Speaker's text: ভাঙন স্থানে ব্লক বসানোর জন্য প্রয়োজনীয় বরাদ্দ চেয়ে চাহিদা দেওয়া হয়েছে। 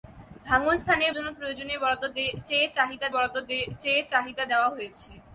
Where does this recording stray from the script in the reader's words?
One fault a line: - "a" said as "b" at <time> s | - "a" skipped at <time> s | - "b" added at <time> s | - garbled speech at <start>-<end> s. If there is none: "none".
- "ব্লক বসানোর জন্য প্রয়োজনীয়" said as "জন্য প্রয়োজনীয় বরাদ্দ চেয়ে চাহিদা" at 1.1 s